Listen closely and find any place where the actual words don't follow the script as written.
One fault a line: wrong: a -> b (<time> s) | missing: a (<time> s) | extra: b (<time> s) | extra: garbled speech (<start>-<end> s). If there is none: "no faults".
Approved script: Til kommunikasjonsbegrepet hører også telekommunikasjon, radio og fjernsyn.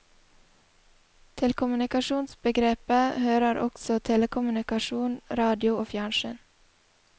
no faults